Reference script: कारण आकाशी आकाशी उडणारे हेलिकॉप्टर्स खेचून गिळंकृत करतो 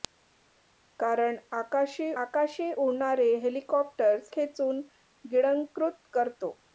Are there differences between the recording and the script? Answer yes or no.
no